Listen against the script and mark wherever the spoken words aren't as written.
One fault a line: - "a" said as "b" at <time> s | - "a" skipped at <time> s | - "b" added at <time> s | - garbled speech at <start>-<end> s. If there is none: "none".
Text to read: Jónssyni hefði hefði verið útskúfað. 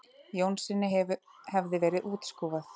- "hefði" skipped at 1.8 s